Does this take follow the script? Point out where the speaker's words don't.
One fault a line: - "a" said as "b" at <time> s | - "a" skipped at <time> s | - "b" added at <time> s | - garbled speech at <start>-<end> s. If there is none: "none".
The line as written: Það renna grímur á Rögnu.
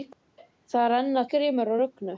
none